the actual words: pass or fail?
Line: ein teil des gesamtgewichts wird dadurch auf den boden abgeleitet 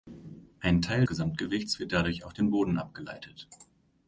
fail